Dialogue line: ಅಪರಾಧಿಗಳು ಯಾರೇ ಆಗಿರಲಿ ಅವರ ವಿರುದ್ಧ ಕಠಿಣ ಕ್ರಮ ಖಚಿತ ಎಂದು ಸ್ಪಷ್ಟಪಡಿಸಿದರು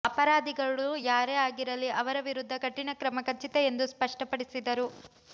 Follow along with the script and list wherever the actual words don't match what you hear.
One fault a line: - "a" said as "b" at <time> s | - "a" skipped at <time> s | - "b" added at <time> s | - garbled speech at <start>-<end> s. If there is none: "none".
none